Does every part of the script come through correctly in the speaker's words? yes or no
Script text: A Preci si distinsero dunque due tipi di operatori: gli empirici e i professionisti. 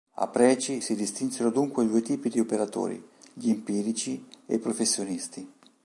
yes